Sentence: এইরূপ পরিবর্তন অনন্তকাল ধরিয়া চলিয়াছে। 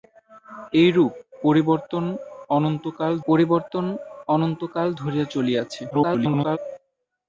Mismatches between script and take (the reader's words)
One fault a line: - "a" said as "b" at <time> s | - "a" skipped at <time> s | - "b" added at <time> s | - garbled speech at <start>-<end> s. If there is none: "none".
- "পরিবর্তন অনন্তকাল" added at 3.3 s
- garbled speech at 5.9-6.6 s